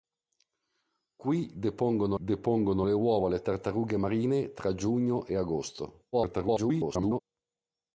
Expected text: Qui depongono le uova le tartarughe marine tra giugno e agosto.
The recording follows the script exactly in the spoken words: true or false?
false